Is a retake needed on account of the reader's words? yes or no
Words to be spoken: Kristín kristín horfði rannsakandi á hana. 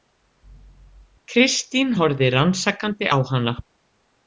yes